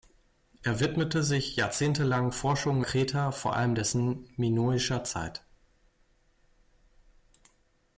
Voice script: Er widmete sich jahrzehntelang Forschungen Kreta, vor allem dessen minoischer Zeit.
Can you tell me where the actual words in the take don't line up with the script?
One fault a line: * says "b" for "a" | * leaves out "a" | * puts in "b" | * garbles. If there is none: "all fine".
all fine